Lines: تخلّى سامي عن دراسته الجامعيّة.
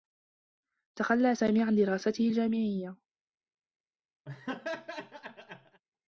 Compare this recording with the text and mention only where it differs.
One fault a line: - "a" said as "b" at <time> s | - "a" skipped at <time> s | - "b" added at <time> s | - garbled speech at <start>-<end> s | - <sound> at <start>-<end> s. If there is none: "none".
- laugh at 4.3-5.8 s